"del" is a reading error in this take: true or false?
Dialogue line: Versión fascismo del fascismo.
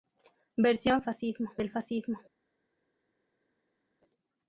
false